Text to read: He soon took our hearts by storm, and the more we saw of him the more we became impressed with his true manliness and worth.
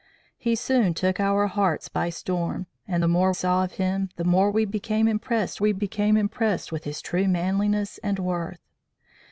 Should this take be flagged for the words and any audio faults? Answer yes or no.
yes